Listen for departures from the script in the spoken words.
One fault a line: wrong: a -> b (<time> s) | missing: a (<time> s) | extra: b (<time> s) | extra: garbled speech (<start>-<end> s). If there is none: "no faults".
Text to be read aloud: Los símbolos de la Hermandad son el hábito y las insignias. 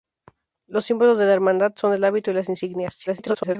extra: garbled speech (3.1-3.6 s)